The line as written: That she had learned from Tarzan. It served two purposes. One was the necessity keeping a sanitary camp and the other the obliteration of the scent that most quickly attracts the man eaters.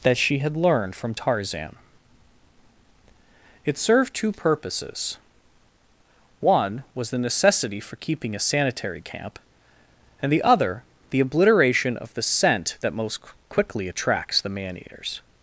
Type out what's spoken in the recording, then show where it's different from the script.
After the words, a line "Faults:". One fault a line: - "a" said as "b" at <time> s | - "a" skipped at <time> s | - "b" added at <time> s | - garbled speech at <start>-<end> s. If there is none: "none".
That she had learned from Tarzan. It served two purposes. One was the necessity for keeping a sanitary camp and the other the obliteration of the scent that most quickly attracts the man eaters.
Faults:
- "for" added at 7.8 s